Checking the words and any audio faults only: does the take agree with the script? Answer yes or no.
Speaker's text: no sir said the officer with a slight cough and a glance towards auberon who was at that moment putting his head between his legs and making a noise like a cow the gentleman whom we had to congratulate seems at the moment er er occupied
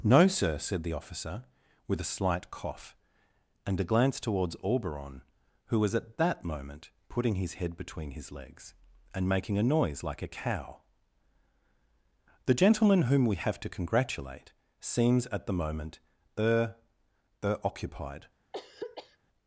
no